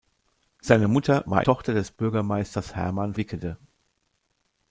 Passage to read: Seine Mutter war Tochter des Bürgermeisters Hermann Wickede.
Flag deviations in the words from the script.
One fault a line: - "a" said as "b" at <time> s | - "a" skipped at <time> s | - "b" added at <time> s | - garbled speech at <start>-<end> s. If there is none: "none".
none